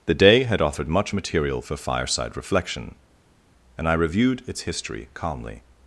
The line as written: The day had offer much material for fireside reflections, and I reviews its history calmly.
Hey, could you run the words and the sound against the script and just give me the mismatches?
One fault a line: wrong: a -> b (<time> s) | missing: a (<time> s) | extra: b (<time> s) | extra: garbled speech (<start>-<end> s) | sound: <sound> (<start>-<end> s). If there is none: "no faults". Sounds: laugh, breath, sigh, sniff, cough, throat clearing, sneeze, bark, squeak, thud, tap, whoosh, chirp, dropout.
wrong: offer -> offered (0.6 s)
wrong: reflections -> reflection (2.4 s)
wrong: reviews -> reviewed (3.9 s)